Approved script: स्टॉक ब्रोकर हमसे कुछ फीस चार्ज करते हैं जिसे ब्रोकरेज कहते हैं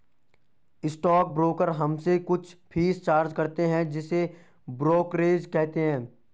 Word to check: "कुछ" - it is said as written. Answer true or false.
true